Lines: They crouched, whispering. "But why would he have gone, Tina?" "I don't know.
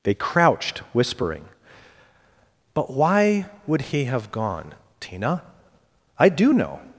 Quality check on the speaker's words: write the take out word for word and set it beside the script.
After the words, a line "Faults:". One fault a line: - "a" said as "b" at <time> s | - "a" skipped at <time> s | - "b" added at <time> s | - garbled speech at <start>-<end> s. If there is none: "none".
They crouched, whispering. "But why would he have gone, Tina?" "I do know.
Faults:
- "don't" said as "do" at 6.3 s